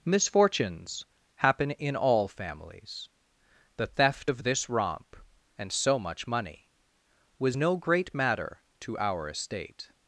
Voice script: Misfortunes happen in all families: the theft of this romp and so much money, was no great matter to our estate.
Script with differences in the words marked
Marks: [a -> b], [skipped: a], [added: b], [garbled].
Misfortunes happen in all families: the theft of this romp and so much money, was no great matter to our estate.